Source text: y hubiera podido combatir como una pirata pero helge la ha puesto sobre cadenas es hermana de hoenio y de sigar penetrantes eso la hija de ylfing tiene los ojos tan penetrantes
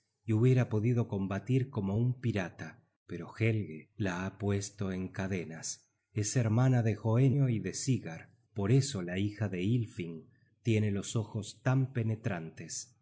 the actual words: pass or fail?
fail